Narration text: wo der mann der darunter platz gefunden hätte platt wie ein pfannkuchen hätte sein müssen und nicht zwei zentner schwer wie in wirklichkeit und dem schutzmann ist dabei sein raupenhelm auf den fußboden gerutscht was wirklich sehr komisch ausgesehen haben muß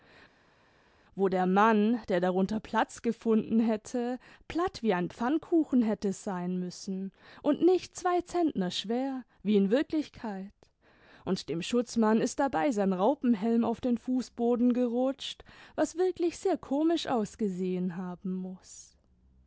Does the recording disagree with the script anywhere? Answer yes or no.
no